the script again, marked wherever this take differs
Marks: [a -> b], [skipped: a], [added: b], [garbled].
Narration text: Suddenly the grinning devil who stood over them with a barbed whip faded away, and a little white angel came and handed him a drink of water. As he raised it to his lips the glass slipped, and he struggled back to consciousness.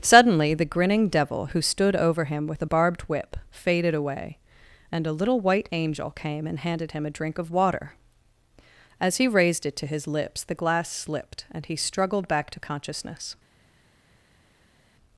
Suddenly the grinning devil who stood over [them -> him] with a barbed whip faded away, and a little white angel came and handed him a drink of water. As he raised it to his lips the glass slipped, and he struggled back to consciousness.